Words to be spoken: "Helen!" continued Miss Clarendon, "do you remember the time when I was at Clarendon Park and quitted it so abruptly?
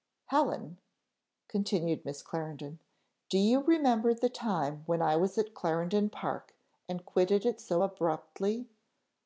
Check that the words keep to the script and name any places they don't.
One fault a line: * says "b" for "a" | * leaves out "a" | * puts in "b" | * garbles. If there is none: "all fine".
all fine